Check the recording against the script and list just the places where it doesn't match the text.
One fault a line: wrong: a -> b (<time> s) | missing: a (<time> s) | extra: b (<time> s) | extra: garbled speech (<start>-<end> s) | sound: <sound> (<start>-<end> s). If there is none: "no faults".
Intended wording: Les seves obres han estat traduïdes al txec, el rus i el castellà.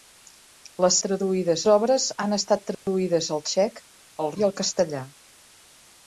wrong: seves -> traduïdes (1.1 s)
sound: dropout (2.7-2.9 s)
missing: rus (4.3 s)